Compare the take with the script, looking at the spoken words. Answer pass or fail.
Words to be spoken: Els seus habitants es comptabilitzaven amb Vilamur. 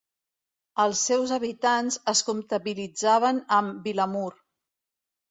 pass